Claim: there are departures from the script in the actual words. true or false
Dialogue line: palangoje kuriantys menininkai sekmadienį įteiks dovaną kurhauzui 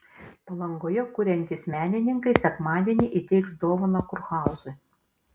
false